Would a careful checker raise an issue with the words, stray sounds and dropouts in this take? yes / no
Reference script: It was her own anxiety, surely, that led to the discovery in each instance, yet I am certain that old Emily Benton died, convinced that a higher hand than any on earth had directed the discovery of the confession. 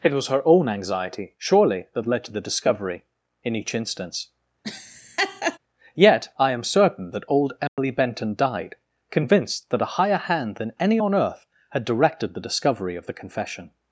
yes